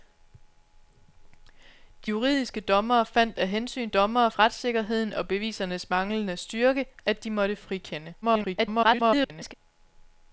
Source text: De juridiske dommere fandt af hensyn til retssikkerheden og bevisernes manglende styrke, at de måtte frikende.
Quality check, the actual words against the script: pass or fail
fail